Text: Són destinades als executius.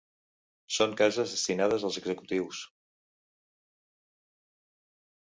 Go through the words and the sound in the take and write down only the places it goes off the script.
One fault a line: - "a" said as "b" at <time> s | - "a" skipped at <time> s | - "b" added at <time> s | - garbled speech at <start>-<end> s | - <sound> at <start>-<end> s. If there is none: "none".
- "cases" added at 1.0 s